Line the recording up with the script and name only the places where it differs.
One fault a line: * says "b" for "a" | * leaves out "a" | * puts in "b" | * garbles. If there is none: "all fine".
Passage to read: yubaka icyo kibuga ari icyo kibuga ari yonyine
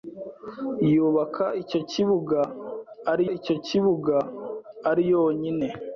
all fine